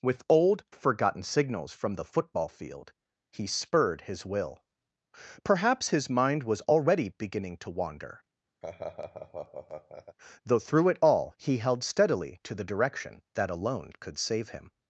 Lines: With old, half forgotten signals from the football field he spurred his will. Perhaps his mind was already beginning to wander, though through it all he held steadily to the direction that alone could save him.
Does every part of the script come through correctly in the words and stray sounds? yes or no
no